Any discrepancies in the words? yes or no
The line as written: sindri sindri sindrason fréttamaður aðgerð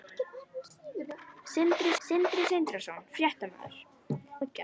no